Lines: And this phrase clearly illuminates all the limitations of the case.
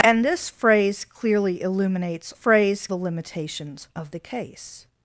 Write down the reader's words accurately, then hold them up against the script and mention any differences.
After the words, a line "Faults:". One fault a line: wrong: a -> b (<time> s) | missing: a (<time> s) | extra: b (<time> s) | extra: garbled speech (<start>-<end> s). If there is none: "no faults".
And this phrase clearly illuminates phrase the limitations of the case.
Faults:
wrong: all -> phrase (2.3 s)